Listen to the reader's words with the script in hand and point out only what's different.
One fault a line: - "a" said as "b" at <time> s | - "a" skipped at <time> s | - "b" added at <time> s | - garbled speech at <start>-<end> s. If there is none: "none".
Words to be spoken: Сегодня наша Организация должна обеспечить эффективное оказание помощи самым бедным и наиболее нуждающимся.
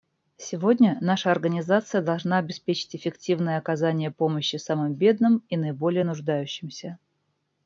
none